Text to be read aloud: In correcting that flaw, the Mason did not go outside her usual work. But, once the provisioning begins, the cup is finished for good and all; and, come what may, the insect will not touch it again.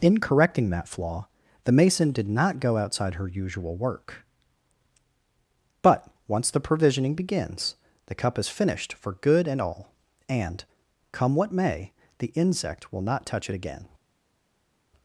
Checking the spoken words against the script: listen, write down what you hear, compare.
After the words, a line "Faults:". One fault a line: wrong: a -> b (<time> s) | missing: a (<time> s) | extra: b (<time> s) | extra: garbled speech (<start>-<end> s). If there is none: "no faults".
In correcting that flaw, the Mason did not go outside her usual work. But, once the provisioning begins, the cup is finished for good and all; and, come what may, the insect will not touch it again.
Faults:
no faults